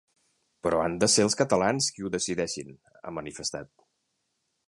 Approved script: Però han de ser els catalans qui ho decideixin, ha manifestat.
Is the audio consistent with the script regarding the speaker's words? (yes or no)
yes